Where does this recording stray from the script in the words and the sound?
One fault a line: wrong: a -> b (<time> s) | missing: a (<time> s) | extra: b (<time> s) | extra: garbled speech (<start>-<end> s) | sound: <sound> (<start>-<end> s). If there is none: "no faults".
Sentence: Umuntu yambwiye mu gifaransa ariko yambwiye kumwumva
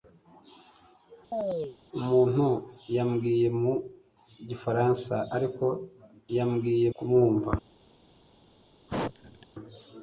sound: chirp (1.3-1.8 s)
sound: sneeze (8.9-9.5 s)